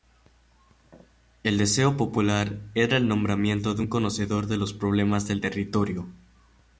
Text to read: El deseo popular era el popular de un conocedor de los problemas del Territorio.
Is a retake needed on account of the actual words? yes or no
yes